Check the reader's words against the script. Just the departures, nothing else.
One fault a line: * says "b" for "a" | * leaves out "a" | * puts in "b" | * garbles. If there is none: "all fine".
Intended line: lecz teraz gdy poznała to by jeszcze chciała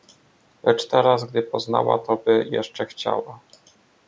all fine